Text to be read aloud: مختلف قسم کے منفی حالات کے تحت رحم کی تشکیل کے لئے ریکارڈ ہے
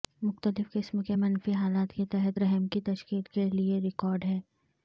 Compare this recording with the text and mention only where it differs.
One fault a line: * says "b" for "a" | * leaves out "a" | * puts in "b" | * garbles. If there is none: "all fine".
all fine